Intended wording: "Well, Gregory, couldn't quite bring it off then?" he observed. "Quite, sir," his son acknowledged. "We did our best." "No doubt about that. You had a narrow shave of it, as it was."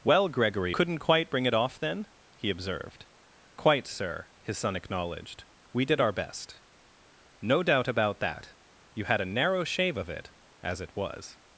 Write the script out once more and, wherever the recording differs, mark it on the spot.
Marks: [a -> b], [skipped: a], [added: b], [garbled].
"Well, Gregory, couldn't quite bring it off then?" he observed. "Quite, sir," his son acknowledged. "We did our best." "No doubt about that. You had a narrow shave of it, as it was."